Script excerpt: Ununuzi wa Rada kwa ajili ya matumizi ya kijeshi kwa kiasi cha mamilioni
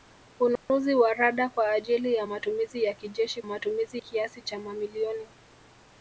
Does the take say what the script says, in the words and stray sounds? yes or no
no